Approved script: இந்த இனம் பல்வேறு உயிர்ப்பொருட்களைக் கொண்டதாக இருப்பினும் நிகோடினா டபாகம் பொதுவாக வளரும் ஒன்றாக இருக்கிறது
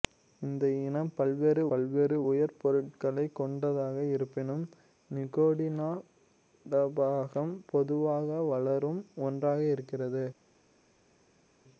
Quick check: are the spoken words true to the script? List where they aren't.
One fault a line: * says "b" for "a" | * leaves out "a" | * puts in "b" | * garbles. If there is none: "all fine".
* puts in "பல்வேறு"